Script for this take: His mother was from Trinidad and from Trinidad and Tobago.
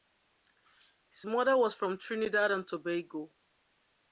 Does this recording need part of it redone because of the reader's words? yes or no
yes